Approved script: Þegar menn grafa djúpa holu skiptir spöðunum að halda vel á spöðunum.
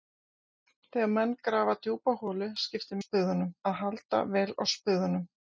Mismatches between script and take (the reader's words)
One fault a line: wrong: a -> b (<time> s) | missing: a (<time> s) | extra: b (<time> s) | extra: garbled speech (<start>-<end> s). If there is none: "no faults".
no faults